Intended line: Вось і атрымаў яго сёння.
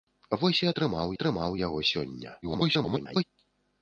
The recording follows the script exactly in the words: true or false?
false